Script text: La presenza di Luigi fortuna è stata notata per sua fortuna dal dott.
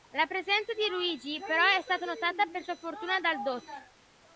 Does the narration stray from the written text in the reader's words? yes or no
yes